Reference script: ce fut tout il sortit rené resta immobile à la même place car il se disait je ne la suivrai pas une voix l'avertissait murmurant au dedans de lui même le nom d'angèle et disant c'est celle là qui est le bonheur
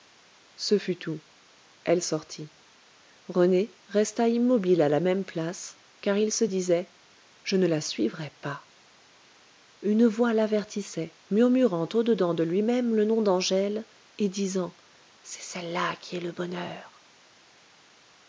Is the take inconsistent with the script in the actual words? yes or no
yes